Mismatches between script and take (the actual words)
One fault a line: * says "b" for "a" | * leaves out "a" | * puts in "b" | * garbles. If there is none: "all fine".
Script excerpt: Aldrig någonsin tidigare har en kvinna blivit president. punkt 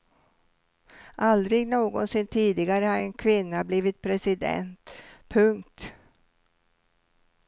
all fine